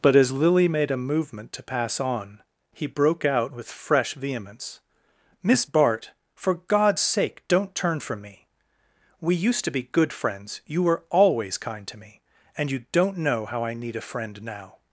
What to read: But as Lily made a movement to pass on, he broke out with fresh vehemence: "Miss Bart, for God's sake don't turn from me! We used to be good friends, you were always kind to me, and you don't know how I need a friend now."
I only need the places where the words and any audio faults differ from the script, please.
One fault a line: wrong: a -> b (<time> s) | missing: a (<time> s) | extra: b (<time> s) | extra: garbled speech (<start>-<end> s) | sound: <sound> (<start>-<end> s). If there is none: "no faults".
no faults